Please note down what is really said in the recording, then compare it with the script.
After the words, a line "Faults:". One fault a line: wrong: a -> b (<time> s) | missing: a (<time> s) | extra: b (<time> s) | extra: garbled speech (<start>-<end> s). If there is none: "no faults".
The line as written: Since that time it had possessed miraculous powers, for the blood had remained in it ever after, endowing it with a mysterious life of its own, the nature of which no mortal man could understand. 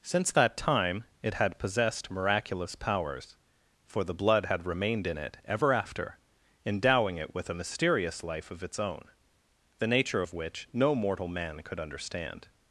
Since that time it had possessed miraculous powers, for the blood had remained in it ever after, endowing it with a mysterious life of its own, the nature of which no mortal man could understand.
Faults:
no faults